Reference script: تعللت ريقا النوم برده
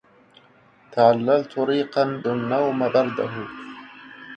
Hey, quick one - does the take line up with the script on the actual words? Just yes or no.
yes